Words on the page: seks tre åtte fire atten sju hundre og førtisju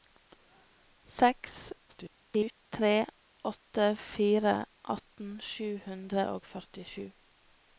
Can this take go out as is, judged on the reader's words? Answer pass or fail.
fail